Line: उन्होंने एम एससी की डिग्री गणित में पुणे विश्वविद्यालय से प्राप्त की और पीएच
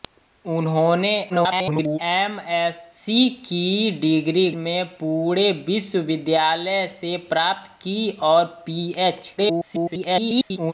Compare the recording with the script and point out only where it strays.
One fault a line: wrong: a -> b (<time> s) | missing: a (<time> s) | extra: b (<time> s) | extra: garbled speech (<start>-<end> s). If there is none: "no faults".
extra: garbled speech (1.3-2.0 s)
missing: गणित (4.5 s)
extra: garbled speech (9.4-10.7 s)